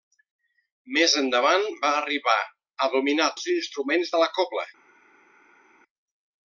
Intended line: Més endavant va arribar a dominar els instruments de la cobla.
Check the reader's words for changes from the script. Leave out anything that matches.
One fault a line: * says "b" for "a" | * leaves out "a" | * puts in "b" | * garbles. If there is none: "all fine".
all fine